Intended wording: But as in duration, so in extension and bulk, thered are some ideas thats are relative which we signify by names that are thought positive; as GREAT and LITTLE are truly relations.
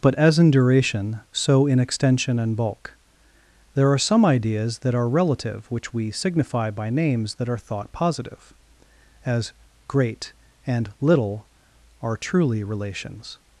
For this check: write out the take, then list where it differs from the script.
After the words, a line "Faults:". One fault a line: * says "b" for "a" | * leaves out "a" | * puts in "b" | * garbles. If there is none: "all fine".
But as in duration, so in extension and bulk, there are some ideas that are relative which we signify by names that are thought positive; as GREAT and LITTLE are truly relations.
Faults:
* says "there" for "thered"
* says "that" for "thats"